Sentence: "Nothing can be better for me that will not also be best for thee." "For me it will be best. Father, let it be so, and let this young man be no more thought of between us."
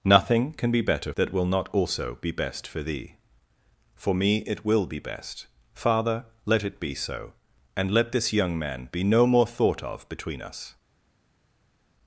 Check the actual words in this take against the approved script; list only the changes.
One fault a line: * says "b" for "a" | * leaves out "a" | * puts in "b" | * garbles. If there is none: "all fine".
* leaves out "for me"